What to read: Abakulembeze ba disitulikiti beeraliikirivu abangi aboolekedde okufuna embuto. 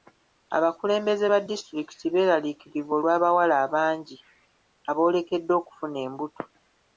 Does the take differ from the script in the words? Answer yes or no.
yes